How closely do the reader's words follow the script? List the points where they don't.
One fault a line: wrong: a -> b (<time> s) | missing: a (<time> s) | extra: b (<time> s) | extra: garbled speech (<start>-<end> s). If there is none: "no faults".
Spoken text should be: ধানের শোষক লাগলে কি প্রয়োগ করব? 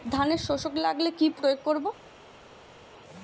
no faults